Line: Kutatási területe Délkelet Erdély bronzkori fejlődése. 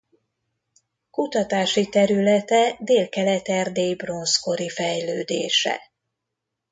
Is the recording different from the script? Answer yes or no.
no